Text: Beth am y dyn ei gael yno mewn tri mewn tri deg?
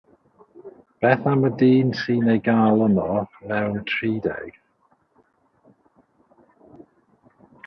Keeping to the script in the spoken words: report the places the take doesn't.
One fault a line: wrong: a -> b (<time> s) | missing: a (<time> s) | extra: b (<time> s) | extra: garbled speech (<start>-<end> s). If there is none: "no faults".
extra: sy'n (2.0 s)
missing: mewn tri (4.1 s)